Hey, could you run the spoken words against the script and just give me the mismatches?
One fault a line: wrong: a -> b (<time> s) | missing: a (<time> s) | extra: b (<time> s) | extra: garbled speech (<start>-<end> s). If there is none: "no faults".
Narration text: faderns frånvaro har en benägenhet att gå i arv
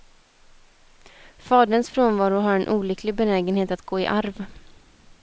extra: olycklig (2.7 s)